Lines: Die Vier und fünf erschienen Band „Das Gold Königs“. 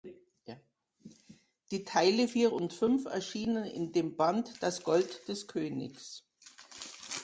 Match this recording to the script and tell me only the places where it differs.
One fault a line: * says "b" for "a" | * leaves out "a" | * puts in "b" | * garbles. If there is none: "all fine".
* puts in "Teile"
* puts in "in dem"
* puts in "des"